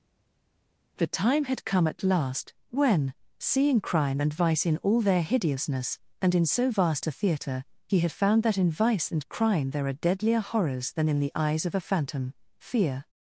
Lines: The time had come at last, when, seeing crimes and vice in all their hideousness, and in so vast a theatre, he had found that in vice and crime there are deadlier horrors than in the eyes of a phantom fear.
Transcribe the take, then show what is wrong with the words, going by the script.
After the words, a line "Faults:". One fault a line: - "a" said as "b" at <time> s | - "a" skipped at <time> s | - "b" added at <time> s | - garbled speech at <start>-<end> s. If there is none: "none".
The time had come at last, when, seeing crime and vice in all their hideousness, and in so vast a theatre, he had found that in vice and crime there are deadlier horrors than in the eyes of a phantom fear.
Faults:
- "crimes" said as "crime" at 3.8 s